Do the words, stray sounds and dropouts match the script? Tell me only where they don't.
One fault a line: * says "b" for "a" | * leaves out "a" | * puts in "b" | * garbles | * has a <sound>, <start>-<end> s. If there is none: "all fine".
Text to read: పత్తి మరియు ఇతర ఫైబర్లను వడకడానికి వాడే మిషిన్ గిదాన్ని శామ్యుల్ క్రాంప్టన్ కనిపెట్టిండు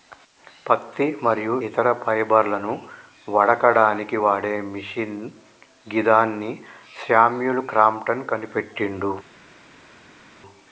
all fine